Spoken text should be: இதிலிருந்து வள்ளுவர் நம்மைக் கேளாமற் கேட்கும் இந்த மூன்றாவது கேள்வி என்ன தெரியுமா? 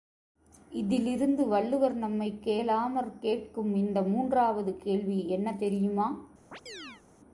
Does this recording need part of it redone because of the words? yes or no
no